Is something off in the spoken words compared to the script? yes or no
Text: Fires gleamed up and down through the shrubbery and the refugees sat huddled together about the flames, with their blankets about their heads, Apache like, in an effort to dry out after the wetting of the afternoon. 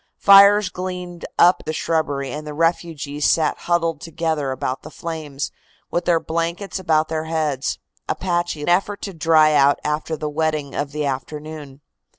yes